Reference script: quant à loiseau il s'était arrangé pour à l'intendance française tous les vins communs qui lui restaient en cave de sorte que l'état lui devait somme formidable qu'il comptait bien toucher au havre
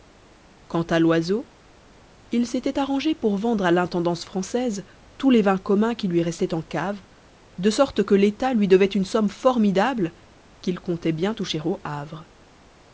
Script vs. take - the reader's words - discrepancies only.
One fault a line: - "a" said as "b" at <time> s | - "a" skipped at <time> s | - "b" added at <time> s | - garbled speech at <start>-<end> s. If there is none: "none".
- "vendre" added at 3.4 s
- "une" added at 8.9 s